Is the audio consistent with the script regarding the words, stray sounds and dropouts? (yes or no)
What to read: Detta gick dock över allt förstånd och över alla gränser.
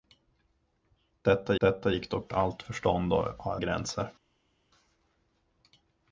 no